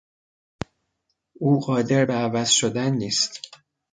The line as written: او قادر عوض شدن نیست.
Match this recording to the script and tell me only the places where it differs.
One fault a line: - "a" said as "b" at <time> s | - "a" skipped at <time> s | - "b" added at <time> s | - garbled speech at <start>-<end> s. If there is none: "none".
- "به" added at 2.0 s